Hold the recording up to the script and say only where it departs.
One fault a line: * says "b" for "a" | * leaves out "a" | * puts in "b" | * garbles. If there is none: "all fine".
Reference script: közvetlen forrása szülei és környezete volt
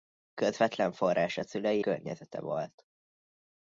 * leaves out "és"